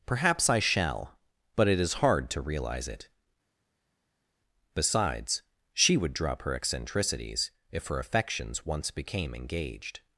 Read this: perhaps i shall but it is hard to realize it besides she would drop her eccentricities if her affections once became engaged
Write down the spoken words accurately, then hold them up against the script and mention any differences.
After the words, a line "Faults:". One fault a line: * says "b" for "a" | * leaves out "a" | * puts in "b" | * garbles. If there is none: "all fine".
perhaps i shall but it is hard to realize it besides she would drop her eccentricities if her affections once became engaged
Faults:
all fine